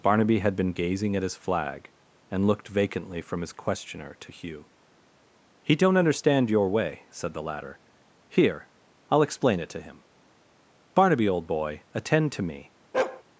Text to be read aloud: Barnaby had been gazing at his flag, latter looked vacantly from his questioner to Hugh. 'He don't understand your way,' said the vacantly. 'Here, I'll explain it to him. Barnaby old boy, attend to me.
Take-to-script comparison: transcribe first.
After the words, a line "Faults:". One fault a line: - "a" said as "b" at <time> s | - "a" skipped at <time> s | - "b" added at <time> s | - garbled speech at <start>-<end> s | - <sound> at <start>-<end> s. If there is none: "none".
Barnaby had been gazing at his flag, and looked vacantly from his questioner to Hugh. 'He don't understand your way,' said the latter. 'Here, I'll explain it to him. Barnaby old boy, attend to me.
Faults:
- "latter" said as "and" at 2.3 s
- "vacantly" said as "latter" at 7.4 s
- bark at 12.9-13.2 s